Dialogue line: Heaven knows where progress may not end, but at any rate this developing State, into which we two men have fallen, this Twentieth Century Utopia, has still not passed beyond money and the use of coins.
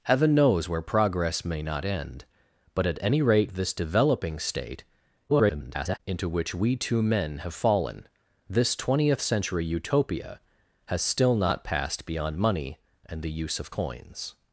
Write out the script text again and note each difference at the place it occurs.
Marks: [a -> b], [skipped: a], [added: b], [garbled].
Heaven knows where progress may not end, but at any rate this developing State, [garbled] into which we two men have fallen, this Twentieth Century Utopia, has still not passed beyond money and the use of coins.